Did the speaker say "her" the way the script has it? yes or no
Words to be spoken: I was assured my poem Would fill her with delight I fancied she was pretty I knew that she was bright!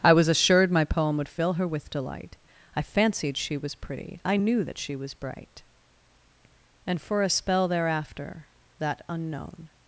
yes